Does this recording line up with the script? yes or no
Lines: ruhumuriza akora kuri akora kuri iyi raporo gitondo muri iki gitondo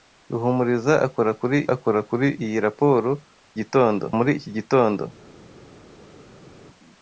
yes